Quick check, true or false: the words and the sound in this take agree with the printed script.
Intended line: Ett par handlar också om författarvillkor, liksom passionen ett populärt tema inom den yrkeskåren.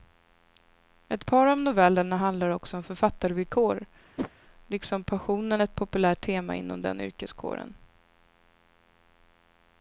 false